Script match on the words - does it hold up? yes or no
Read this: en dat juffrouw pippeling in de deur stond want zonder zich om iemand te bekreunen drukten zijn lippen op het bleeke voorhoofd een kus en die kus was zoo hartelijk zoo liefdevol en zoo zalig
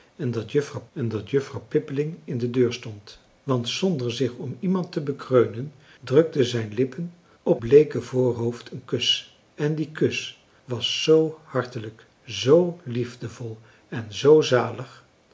no